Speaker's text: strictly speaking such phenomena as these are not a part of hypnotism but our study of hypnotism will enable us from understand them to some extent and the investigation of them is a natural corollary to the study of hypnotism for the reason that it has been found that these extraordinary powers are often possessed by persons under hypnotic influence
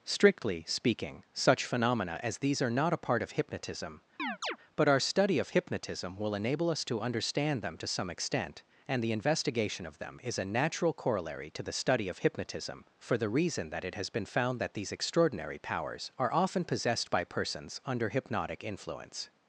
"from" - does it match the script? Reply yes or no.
no